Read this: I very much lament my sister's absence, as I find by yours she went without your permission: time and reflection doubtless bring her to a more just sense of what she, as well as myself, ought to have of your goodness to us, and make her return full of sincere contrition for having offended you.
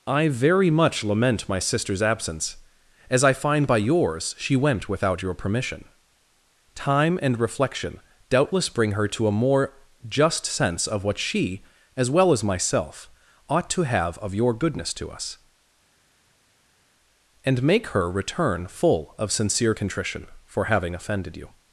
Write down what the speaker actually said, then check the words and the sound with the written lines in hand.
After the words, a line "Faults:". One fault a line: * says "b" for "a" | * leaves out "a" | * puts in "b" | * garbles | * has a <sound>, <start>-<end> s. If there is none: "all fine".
I very much lament my sister's absence, as I find by yours she went without your permission: time and reflection doubtless bring her to a more just sense of what she, as well as myself, ought to have of your goodness to us, and make her return full of sincere contrition for having offended you.
Faults:
all fine